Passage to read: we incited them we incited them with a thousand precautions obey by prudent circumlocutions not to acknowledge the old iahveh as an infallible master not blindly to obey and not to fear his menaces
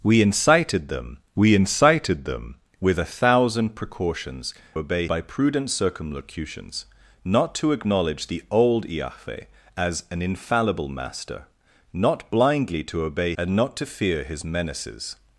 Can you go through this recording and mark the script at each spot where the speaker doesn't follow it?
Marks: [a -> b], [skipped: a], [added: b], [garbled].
we incited them we incited them with a thousand precautions obey by prudent circumlocutions not to acknowledge the old iahveh as an infallible master not blindly to obey and not to fear his menaces